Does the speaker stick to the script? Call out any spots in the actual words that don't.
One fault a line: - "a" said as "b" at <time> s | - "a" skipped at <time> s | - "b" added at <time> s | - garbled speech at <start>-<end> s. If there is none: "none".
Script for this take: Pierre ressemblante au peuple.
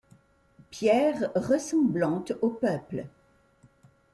none